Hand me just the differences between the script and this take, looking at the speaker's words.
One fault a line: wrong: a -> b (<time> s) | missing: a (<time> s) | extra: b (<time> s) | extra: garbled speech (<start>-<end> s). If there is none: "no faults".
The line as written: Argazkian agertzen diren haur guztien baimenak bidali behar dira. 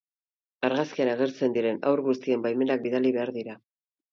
no faults